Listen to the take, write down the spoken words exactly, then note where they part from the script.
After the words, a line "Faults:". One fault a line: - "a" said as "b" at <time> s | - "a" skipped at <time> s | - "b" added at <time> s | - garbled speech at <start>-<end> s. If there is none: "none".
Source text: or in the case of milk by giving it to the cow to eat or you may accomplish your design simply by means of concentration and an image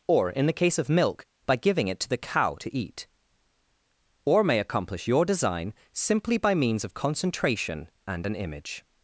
or in the case of milk by giving it to the cow to eat or may accomplish your design simply by means of concentration and an image
Faults:
- "you" skipped at 4.4 s